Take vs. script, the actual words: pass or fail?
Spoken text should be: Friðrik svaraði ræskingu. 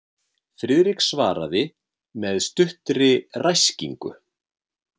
fail